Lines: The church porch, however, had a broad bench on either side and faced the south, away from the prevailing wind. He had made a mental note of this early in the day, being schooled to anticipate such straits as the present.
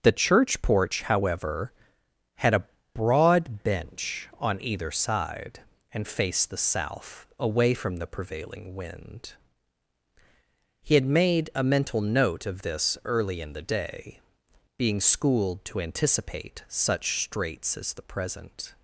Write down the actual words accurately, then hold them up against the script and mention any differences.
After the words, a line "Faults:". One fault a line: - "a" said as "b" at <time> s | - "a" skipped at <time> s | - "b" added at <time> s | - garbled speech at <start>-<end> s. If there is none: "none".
The church porch, however, had a broad bench on either side and faced the south, away from the prevailing wind. He had made a mental note of this early in the day, being schooled to anticipate such straits as the present.
Faults:
none